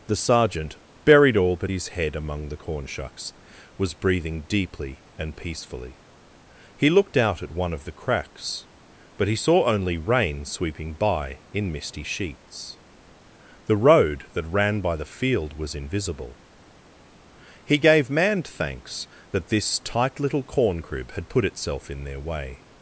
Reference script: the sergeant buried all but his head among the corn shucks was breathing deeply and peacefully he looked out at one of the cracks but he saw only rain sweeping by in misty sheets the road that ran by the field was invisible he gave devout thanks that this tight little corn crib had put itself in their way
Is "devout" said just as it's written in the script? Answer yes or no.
no